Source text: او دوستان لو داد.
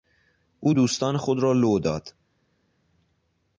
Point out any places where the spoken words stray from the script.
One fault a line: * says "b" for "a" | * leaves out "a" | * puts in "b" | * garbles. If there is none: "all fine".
* puts in "خود را"